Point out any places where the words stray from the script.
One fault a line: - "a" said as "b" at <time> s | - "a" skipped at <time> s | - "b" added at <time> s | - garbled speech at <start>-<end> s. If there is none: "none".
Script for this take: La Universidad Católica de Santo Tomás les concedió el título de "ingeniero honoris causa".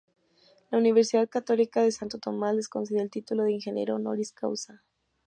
none